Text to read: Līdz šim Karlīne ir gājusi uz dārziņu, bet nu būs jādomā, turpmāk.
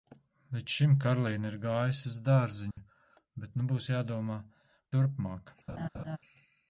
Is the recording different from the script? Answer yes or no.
no